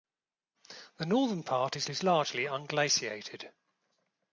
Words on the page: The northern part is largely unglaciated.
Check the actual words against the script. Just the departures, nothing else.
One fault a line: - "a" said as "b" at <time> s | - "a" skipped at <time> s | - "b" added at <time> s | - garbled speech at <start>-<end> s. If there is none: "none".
- "is" added at 1.9 s